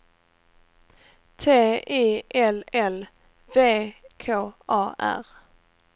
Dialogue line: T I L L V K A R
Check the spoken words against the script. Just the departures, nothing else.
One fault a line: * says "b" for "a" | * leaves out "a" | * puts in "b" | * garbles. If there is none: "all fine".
all fine